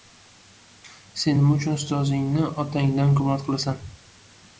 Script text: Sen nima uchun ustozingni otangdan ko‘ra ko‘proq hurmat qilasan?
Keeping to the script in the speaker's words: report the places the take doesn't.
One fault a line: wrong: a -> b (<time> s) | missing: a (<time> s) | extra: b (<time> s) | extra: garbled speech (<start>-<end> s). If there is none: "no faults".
missing: ko‘ra ko‘proq (3.2 s)